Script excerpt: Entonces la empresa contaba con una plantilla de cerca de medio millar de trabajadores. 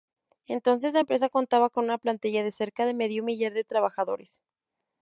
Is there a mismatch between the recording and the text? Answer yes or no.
no